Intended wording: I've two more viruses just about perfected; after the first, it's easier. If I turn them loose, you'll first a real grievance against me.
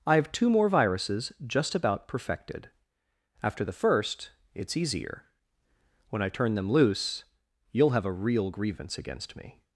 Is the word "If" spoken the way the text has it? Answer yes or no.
no